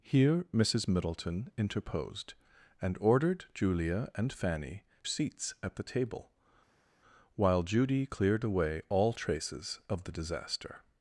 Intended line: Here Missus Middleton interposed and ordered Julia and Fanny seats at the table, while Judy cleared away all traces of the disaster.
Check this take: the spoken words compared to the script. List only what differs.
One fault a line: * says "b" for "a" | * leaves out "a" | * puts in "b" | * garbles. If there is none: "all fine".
all fine